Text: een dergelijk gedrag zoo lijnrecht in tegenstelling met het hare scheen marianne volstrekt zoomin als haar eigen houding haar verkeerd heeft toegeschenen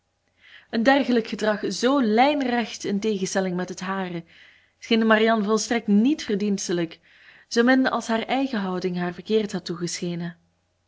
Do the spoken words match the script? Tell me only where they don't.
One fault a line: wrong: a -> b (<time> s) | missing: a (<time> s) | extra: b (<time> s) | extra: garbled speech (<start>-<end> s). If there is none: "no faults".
extra: niet verdienstelijk (5.9 s)
wrong: heeft -> had (9.5 s)